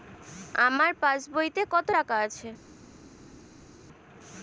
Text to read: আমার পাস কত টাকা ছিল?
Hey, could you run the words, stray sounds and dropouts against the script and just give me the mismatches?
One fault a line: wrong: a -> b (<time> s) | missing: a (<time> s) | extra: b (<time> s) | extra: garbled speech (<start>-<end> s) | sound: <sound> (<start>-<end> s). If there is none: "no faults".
extra: বইতে (1.3 s)
wrong: ছিল -> আছে (2.3 s)